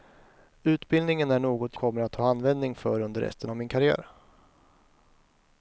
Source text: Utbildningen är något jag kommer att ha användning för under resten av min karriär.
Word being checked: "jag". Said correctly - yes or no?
no